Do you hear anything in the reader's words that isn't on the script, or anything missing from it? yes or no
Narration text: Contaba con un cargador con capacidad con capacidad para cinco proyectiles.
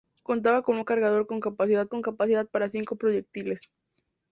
no